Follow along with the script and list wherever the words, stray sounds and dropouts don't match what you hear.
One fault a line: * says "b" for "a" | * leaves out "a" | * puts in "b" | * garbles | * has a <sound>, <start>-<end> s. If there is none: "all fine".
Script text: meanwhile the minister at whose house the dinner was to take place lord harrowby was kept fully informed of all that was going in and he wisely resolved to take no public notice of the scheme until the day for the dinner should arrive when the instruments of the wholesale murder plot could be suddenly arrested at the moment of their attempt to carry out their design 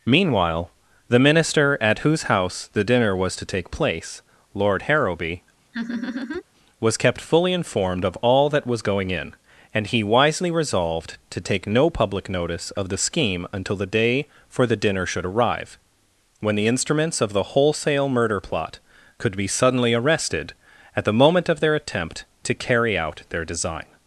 * has a laugh, 5.7-6.4 s